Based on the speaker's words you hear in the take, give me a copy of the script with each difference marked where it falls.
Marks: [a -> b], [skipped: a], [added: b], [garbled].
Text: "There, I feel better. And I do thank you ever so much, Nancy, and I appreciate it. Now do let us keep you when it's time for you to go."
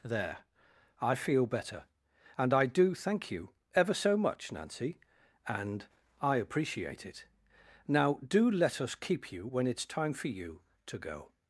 "There, I feel better. And I do thank you ever so much, Nancy, and I appreciate it. Now do let us keep you when it's time for you to go."